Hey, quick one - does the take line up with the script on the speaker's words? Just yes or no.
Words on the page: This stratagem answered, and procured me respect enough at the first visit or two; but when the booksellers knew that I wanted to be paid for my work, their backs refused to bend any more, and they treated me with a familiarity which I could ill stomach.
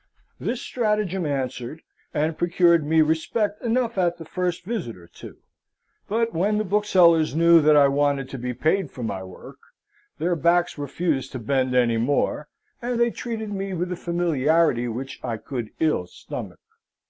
yes